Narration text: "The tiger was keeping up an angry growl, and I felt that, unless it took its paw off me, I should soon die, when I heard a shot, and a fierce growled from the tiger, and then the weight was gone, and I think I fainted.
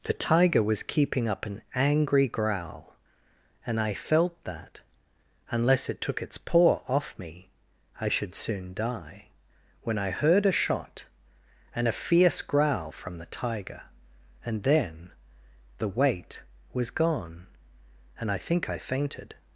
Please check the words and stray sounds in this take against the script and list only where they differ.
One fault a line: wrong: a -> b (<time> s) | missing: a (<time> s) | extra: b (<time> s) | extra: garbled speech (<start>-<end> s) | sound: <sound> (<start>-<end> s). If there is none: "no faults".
wrong: growled -> growl (12.4 s)